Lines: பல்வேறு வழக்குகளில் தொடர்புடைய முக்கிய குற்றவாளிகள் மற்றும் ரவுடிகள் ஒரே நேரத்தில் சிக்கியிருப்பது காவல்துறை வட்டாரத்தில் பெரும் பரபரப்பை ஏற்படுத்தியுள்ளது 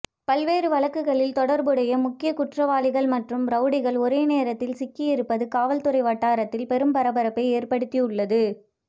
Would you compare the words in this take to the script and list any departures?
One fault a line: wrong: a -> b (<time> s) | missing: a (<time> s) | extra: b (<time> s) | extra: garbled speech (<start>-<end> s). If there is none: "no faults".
no faults